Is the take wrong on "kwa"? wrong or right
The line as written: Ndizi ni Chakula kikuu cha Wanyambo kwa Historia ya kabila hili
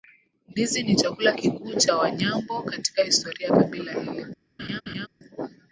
wrong